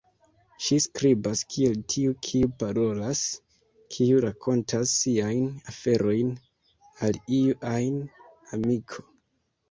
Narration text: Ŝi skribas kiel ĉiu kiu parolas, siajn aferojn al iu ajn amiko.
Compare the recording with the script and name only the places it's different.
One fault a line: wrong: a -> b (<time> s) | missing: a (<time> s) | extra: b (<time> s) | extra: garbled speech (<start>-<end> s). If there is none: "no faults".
wrong: ĉiu -> tiu (1.9 s)
extra: kiu rakontas (4.0 s)